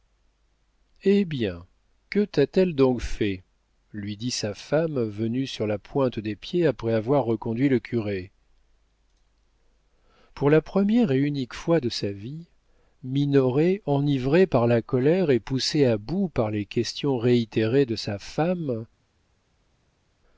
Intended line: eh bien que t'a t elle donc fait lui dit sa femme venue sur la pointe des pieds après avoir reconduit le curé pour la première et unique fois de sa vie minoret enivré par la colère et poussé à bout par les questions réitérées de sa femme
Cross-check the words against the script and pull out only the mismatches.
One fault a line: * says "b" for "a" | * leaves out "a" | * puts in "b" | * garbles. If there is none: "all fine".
all fine